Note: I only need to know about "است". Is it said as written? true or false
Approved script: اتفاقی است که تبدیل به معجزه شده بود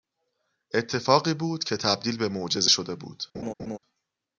false